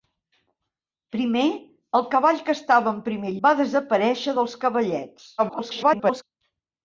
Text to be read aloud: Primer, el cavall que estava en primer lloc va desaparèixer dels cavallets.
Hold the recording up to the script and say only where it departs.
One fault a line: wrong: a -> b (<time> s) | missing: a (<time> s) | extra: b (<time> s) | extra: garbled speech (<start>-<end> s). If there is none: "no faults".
missing: lloc (3.4 s)
extra: garbled speech (5.4-6.2 s)